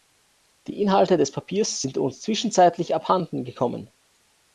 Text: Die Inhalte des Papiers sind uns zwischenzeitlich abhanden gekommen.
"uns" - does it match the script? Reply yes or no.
yes